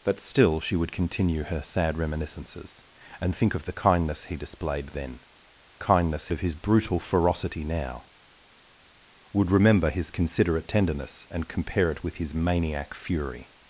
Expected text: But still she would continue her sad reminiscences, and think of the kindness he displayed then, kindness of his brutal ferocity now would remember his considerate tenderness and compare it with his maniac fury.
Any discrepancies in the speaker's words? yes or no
no